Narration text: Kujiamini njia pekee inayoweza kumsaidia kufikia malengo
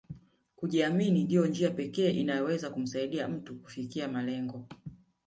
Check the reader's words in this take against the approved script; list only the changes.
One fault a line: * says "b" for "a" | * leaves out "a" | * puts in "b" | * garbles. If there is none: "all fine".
* puts in "ndio"
* puts in "mtu"